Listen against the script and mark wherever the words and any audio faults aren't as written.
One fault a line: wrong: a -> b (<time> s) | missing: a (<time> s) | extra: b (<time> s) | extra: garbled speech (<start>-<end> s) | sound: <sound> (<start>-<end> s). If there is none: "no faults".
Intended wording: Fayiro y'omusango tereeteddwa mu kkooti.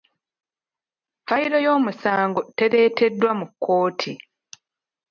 no faults